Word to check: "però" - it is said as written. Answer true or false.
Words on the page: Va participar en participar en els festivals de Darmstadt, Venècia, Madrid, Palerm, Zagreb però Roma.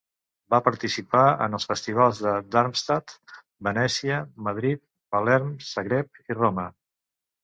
false